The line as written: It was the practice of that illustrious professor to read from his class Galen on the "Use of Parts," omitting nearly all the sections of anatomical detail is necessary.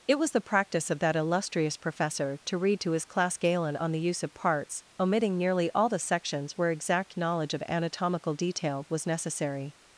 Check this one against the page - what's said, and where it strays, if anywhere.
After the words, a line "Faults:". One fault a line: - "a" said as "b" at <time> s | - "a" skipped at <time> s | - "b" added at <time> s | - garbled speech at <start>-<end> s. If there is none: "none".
It was the practice of that illustrious professor to read to his class Galen on the "Use of Parts," omitting nearly all the sections where exact knowledge of anatomical detail was necessary.
Faults:
- "from" said as "to" at 2.8 s
- "where exact knowledge" added at 6.6 s
- "is" said as "was" at 8.9 s